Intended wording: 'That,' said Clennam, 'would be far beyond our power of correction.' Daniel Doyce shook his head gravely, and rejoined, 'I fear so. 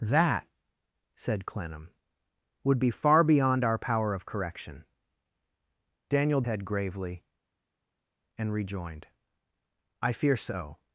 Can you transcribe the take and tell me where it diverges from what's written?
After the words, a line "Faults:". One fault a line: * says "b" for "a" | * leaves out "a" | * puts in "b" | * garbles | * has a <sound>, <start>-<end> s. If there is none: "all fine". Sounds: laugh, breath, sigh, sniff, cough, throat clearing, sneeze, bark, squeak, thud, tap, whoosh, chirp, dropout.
'That,' said Clennam, 'would be far beyond our power of correction.' Daniel Head gravely, and rejoined, 'I fear so.
Faults:
* leaves out "Doyce shook his"